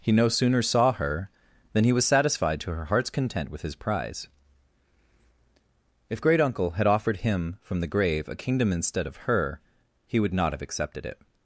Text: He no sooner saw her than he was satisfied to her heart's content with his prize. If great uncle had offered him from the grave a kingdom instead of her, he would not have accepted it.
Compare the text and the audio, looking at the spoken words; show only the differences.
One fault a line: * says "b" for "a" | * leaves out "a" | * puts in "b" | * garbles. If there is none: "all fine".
all fine